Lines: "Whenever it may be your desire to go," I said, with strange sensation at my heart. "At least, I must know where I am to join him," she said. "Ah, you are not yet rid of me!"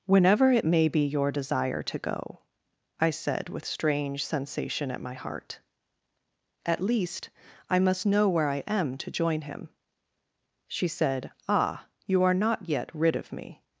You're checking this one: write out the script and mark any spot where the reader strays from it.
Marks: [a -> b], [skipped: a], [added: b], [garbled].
"Whenever it may be your desire to go," I said, with strange sensation at my heart. "At least, I must know where I am to join him," she said. "Ah, you are not yet rid of me!"